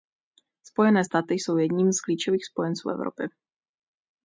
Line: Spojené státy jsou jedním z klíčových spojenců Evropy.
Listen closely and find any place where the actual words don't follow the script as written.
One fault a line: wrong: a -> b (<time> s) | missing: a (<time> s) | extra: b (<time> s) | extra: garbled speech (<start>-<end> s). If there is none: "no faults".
no faults